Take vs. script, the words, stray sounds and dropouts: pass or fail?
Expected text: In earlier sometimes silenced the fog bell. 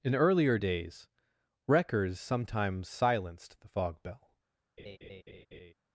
fail